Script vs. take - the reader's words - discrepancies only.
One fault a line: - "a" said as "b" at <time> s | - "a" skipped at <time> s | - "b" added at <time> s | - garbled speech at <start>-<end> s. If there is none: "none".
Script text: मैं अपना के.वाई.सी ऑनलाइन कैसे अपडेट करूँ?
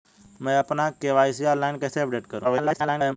- garbled speech at 2.4-3.2 s